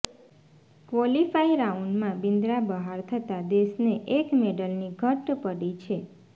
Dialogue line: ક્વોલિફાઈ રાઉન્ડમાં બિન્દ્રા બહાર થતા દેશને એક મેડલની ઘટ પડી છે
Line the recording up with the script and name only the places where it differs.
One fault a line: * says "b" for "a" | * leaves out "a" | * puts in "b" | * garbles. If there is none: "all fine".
all fine